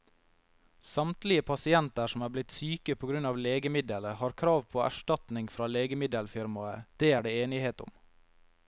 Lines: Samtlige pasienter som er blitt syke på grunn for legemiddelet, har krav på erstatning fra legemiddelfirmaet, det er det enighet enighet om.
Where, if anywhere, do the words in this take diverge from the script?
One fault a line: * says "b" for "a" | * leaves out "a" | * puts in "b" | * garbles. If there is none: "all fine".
* says "av" for "for"
* leaves out "enighet"